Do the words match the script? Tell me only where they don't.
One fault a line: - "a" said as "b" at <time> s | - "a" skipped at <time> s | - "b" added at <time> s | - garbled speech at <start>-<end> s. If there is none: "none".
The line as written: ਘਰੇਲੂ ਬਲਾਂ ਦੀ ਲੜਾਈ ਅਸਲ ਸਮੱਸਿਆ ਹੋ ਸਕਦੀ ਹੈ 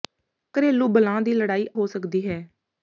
- "ਅਸਲ ਸਮੱਸਿਆ" skipped at 1.7 s